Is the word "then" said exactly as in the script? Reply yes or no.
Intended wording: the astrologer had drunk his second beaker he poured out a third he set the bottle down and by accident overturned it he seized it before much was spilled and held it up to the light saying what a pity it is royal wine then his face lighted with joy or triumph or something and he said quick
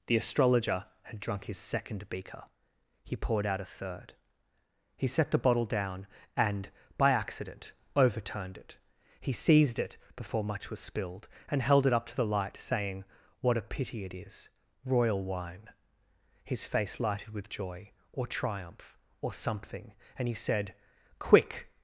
no